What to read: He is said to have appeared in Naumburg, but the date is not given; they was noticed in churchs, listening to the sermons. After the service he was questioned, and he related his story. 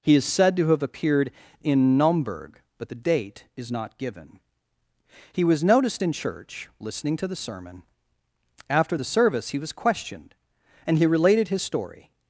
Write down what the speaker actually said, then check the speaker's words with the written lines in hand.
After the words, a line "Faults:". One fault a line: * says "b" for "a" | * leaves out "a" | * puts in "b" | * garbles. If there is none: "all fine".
He is said to have appeared in Naumburg, but the date is not given; he was noticed in church, listening to the sermon. After the service he was questioned, and he related his story.
Faults:
* says "he" for "they"
* says "church" for "churchs"
* says "sermon" for "sermons"